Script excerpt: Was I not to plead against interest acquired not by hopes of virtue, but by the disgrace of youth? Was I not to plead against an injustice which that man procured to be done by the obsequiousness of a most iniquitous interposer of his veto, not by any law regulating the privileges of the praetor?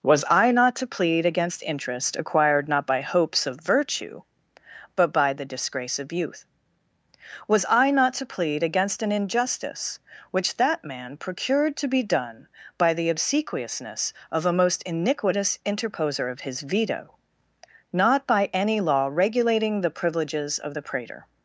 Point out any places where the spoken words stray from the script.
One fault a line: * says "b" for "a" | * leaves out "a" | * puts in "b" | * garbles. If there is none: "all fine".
all fine